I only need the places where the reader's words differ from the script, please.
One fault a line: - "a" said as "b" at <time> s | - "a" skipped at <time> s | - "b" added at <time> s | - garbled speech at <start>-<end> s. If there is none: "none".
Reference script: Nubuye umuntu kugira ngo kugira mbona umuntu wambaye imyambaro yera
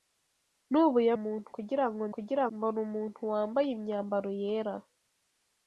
none